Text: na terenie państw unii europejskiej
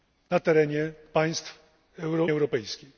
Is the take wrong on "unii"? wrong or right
wrong